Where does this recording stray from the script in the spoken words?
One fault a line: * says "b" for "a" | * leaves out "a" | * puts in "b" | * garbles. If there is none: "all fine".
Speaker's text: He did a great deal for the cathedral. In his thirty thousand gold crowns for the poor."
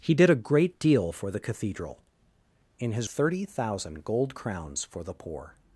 all fine